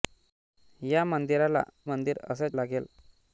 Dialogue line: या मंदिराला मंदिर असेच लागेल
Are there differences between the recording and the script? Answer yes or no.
no